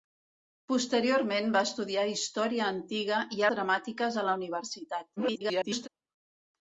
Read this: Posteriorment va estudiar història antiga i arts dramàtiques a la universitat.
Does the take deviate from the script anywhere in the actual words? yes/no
yes